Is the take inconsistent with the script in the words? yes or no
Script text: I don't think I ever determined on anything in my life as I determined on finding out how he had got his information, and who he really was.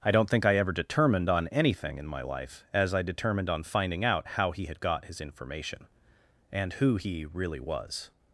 no